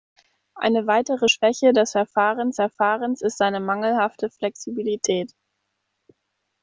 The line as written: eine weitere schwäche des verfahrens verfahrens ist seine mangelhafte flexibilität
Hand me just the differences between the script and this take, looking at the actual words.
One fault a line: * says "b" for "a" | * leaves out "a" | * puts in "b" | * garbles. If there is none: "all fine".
all fine